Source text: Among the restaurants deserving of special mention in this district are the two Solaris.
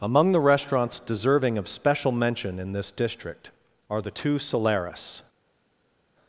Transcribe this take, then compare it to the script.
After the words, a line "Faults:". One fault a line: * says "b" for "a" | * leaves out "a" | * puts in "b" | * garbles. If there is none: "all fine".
Among the restaurants deserving of special mention in this district are the two Solaris.
Faults:
all fine